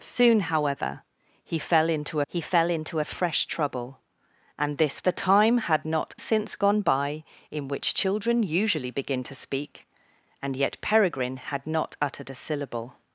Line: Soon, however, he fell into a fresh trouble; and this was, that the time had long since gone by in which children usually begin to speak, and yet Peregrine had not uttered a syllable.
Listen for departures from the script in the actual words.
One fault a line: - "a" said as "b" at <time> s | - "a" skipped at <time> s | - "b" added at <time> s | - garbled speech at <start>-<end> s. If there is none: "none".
- "he fell into" added at 2.3 s
- "was that" skipped at 5.1 s
- "long" said as "not" at 5.8 s